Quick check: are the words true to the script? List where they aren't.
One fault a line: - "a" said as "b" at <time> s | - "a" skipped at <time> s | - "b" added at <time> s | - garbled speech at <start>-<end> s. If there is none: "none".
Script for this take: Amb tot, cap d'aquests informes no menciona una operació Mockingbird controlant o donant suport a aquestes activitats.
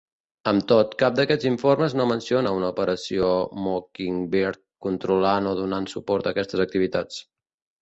none